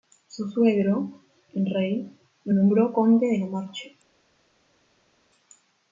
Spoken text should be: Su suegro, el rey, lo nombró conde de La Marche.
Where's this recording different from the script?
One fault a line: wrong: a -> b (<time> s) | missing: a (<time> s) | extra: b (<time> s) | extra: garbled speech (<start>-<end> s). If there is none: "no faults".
no faults